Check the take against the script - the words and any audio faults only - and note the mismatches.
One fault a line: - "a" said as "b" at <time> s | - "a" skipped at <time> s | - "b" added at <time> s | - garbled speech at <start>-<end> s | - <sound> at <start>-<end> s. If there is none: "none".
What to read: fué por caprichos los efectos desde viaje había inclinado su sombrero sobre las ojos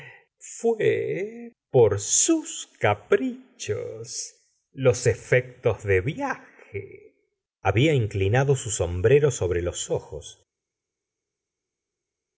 - "sus" added at 2.0 s
- "desde" said as "de" at 5.8 s
- "las" said as "los" at 9.6 s